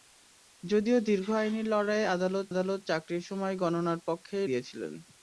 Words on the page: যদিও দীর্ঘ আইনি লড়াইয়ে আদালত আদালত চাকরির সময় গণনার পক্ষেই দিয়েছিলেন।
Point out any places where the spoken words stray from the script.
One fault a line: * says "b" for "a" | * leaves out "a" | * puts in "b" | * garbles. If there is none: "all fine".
all fine